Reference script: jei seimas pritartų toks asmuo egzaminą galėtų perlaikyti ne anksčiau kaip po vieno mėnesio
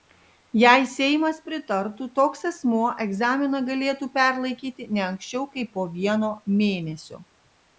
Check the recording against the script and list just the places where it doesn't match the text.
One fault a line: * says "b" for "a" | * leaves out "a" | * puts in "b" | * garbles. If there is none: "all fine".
all fine